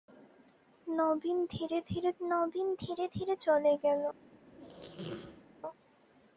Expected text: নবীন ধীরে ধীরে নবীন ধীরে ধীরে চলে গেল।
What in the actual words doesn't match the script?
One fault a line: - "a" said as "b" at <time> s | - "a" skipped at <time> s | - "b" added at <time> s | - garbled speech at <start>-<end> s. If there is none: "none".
none